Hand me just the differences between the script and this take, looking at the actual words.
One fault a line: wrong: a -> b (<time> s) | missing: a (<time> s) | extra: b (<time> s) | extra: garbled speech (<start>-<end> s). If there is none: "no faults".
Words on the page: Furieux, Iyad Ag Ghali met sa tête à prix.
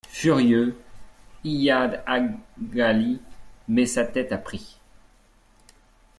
no faults